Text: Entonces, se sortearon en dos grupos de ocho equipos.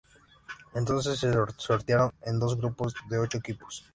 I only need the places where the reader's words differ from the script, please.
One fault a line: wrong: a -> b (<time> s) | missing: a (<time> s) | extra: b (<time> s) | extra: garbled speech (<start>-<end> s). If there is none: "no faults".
no faults